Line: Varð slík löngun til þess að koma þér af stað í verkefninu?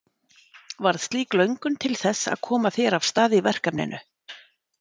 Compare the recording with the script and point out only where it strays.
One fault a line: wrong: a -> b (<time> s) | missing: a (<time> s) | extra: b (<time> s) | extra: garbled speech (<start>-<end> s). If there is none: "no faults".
no faults